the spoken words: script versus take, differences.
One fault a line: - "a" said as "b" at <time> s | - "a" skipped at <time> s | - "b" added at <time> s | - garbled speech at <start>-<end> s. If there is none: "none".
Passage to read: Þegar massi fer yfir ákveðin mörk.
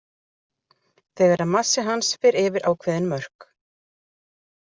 - "hans" added at 1.9 s